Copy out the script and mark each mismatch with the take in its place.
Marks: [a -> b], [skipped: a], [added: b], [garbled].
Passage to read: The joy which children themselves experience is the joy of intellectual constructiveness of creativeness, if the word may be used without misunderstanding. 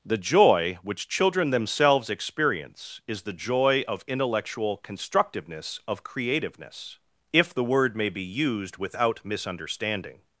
The joy which children themselves experience is the joy of intellectual constructiveness of creativeness, if the word may be used without misunderstanding.